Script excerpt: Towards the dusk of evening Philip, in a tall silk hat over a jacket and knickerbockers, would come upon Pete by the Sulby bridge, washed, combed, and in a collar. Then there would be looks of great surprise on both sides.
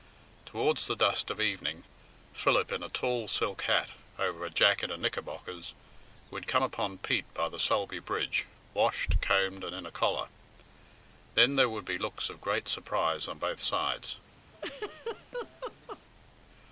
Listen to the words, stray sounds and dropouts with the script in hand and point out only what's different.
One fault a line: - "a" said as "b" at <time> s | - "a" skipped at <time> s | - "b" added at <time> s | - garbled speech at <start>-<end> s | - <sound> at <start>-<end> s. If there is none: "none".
- laugh at 14.5-16.0 s